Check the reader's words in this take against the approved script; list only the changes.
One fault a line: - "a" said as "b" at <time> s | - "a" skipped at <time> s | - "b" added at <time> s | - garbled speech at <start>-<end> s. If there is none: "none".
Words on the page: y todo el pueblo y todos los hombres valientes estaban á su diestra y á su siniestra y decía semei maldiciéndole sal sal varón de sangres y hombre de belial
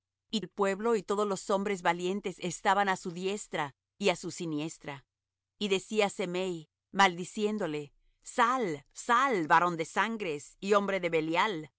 - "todo" skipped at 0.4 s